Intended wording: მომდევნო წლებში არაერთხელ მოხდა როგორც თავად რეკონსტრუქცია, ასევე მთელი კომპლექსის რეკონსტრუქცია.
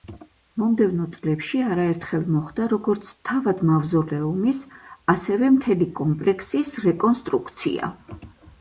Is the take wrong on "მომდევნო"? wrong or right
right